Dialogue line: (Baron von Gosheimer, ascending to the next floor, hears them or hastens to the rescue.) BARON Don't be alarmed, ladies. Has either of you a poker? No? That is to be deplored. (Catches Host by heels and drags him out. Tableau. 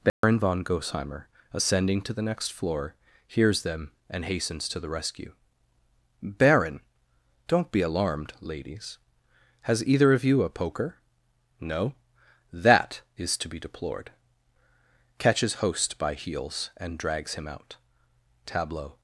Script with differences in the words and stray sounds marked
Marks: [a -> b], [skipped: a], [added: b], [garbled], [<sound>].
(Baron [dropout] von Gosheimer, ascending to the next floor, hears them [or -> and] hastens to the rescue.) BARON Don't be alarmed, ladies. Has either of you a poker? No? That is to be deplored. (Catches Host by heels and drags him out. Tableau.